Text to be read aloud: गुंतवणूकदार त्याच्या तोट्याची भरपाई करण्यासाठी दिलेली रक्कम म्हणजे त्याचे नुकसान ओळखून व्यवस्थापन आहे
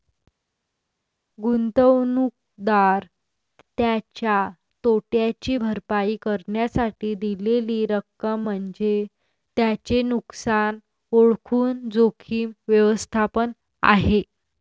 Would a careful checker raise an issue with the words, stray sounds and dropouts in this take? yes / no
yes